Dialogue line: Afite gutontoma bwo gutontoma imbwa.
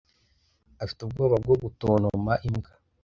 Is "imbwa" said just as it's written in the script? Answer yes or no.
yes